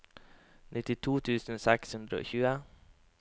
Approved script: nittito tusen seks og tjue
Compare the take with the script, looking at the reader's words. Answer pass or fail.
fail